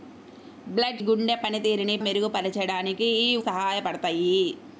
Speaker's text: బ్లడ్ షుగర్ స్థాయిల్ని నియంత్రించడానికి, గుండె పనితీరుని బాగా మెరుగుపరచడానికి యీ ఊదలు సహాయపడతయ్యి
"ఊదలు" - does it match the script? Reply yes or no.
no